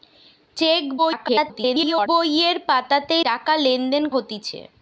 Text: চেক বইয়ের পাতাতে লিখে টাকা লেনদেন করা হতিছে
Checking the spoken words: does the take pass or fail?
fail